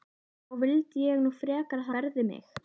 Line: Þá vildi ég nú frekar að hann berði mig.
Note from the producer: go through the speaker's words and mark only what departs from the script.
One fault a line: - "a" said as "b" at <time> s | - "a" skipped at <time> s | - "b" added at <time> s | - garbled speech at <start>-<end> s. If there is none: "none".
- "hann" skipped at 1.9 s